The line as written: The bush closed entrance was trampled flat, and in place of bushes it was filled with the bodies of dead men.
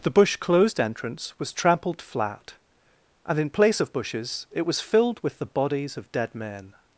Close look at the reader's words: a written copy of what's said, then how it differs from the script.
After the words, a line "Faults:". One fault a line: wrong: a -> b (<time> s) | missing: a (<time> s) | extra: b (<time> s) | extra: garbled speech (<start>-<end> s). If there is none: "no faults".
The bush closed entrance was trampled flat, and in place of bushes it was filled with the bodies of dead men.
Faults:
no faults